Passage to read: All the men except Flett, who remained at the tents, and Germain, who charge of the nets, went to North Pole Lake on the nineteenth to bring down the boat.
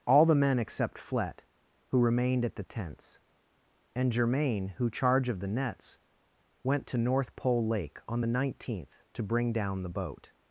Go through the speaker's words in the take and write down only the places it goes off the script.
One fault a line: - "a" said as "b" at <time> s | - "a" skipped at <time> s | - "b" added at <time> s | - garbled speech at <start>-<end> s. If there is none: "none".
none